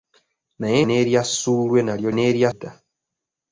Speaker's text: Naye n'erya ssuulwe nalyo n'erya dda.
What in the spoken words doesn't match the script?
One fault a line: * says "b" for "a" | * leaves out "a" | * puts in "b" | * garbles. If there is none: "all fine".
all fine